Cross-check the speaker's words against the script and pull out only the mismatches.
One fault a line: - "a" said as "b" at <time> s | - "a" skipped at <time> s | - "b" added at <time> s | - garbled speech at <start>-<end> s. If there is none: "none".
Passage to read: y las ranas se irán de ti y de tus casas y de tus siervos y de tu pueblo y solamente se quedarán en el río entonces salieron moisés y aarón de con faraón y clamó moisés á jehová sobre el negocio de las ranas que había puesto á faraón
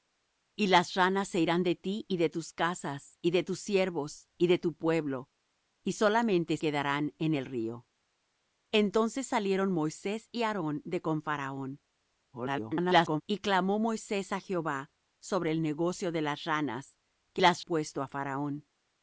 - "se" skipped at 6.6 s
- garbled speech at 12.3-13.2 s
- "había" said as "las" at 17.4 s